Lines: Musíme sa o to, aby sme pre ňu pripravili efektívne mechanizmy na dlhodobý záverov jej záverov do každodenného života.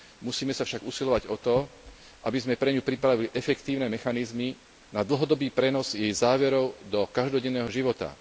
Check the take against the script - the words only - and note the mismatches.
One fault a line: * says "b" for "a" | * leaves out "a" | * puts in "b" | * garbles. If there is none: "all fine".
* puts in "však usilovať"
* says "prenos" for "záverov"